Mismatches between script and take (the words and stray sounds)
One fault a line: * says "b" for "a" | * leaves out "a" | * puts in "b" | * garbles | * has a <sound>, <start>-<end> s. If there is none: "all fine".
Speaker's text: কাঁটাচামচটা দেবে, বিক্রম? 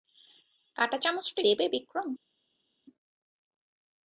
all fine